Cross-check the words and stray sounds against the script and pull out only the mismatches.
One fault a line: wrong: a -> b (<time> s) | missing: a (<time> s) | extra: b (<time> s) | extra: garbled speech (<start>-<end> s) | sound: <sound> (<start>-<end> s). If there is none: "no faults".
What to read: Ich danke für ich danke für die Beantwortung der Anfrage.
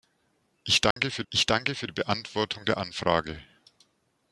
sound: dropout (0.9-1.0 s)